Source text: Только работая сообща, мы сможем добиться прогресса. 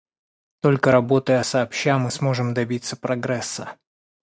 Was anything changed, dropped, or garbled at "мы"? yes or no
no